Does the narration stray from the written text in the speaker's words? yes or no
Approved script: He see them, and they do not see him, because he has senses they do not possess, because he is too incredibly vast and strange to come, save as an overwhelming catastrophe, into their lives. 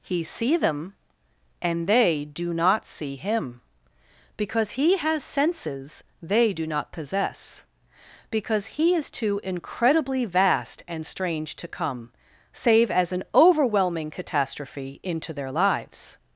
no